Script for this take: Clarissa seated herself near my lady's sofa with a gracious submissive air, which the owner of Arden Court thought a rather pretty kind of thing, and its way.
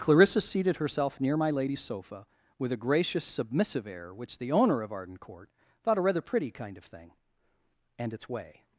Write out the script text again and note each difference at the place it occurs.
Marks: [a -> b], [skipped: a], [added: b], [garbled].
Clarissa seated herself near my lady's sofa with a gracious submissive air, which the owner of Arden Court thought a rather pretty kind of thing, and its way.